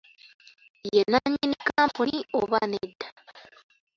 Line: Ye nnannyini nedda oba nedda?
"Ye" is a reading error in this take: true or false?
false